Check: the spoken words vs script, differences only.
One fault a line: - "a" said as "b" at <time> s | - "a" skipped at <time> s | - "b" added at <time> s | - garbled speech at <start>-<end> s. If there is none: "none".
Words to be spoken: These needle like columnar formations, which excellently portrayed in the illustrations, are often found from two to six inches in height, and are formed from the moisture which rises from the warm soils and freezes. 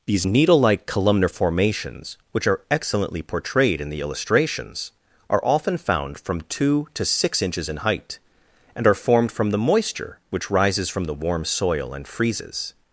- "are" added at 2.5 s
- "soils" said as "soil" at 11.4 s